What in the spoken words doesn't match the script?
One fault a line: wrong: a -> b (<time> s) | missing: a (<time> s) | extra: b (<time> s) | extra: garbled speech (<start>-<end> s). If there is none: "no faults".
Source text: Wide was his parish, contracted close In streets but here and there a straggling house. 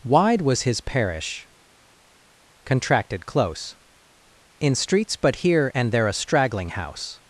no faults